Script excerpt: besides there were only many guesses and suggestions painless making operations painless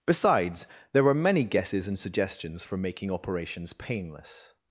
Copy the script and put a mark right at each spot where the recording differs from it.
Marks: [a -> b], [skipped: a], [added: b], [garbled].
besides there were [skipped: only] many guesses and suggestions [painless -> for] making operations painless